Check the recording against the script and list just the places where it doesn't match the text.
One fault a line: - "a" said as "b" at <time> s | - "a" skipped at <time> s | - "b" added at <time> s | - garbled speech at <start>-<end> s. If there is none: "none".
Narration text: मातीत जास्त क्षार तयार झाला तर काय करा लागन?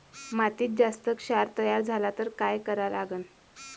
none